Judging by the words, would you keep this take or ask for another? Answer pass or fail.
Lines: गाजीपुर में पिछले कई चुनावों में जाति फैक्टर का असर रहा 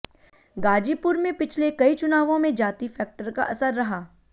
pass